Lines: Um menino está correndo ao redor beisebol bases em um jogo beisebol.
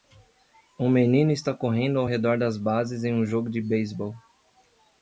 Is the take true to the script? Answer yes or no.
no